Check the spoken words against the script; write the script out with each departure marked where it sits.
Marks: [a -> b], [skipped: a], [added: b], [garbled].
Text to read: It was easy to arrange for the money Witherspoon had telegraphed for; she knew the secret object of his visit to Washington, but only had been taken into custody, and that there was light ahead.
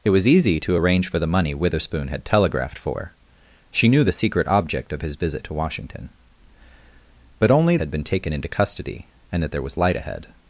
It was easy to arrange for the money Witherspoon had telegraphed for; she knew the secret object of his visit to Washington, but only had been taken into custody, and that there was light ahead.